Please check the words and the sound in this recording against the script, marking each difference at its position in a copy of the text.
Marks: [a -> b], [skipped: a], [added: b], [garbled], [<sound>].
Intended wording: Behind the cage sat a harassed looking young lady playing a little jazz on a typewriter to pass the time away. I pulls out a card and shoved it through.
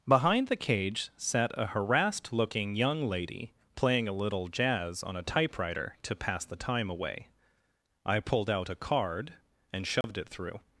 Behind the cage sat a harassed looking young lady playing a little jazz on a typewriter to pass the time away. I [pulls -> pulled] out a card and shoved [dropout] it through.